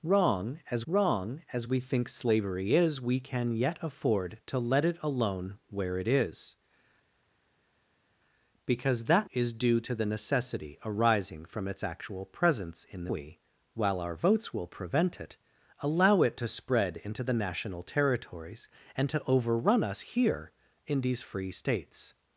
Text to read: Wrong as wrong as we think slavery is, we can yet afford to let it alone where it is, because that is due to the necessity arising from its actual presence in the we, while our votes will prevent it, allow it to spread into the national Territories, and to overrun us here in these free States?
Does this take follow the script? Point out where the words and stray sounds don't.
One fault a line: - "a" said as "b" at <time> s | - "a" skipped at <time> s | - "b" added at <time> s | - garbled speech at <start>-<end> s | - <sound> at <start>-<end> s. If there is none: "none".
none